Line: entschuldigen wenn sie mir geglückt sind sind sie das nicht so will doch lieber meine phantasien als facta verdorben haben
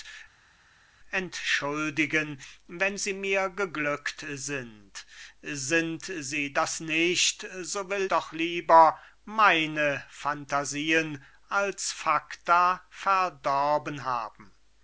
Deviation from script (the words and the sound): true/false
false